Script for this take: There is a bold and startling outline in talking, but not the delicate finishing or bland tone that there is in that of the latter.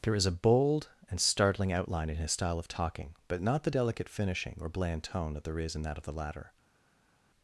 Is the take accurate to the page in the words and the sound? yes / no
no